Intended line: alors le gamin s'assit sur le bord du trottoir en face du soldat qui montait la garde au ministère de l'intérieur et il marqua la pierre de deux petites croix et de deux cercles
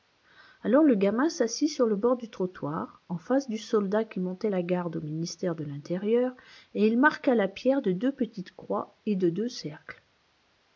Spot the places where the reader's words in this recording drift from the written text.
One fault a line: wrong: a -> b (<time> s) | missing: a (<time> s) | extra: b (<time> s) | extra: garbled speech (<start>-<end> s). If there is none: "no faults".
no faults